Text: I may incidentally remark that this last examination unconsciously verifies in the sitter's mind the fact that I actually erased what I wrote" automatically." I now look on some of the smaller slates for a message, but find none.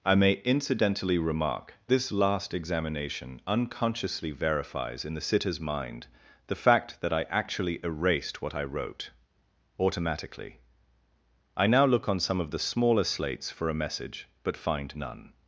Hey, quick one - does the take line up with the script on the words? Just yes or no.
no